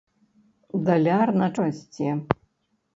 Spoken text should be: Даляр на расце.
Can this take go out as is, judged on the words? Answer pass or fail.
pass